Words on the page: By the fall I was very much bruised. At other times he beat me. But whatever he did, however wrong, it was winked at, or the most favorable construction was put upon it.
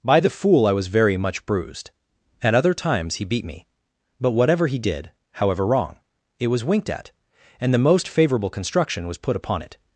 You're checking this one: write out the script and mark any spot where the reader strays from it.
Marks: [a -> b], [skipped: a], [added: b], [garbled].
By the [fall -> fool] I was very much bruised. At other times he beat me. But whatever he did, however wrong, it was winked at, [or -> and] the most favorable construction was put upon it.